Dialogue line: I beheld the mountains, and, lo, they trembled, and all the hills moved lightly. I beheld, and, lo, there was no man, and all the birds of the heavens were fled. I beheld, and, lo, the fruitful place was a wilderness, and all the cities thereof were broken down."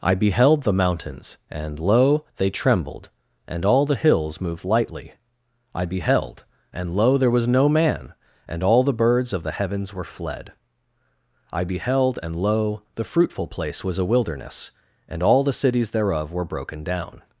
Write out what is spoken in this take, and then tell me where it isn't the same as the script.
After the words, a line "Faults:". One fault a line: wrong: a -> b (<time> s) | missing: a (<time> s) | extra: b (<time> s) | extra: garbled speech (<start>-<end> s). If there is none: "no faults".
I beheld the mountains, and, lo, they trembled, and all the hills moved lightly. I beheld, and, lo, there was no man, and all the birds of the heavens were fled. I beheld, and, lo, the fruitful place was a wilderness, and all the cities thereof were broken down."
Faults:
no faults